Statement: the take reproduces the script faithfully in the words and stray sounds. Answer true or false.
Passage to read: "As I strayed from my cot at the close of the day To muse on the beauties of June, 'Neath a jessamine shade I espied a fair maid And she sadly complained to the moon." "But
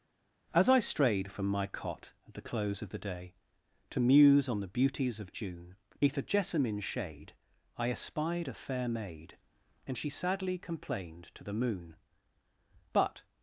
true